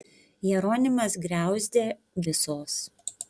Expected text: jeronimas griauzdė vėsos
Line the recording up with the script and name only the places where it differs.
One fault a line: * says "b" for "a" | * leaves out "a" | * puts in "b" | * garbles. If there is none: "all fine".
all fine